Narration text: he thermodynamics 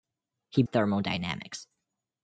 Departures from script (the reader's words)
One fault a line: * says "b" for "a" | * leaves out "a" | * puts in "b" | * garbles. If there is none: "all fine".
all fine